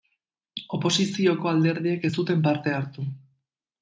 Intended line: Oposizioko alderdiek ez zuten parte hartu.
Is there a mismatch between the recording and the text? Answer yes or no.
no